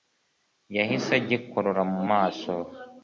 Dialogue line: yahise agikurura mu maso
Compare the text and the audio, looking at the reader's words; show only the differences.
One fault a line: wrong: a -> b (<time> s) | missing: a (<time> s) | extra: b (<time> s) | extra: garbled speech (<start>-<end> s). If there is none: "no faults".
no faults